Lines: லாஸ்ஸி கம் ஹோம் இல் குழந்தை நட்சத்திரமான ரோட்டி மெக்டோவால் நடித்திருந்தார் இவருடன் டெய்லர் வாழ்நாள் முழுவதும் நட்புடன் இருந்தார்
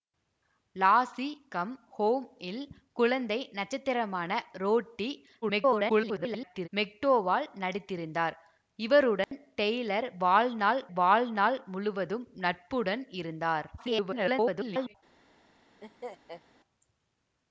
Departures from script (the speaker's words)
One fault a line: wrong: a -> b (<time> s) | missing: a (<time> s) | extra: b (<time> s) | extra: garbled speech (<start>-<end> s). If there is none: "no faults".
extra: garbled speech (5.4-6.7 s)
extra: வாழ்நாள் (10.9 s)
extra: garbled speech (13.8-15.0 s)